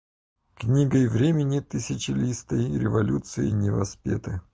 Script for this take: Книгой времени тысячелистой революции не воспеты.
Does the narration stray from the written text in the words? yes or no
no